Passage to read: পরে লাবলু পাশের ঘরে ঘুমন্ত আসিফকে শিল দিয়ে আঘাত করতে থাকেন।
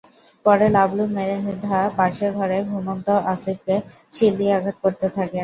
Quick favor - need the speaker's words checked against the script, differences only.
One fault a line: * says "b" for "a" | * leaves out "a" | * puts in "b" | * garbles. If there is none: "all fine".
* puts in "মৃধা"